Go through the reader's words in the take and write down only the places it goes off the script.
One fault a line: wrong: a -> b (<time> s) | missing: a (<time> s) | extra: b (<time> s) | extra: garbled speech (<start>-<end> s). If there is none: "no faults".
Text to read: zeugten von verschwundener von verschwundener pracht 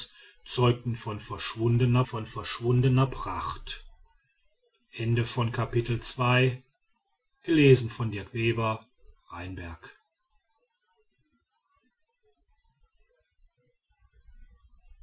no faults